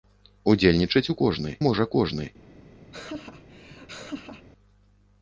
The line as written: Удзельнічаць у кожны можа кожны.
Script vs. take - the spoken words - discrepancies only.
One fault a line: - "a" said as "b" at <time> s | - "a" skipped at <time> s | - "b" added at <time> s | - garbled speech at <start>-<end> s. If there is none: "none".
none